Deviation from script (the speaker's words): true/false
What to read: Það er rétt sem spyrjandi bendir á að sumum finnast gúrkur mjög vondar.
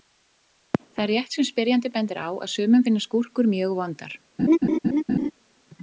false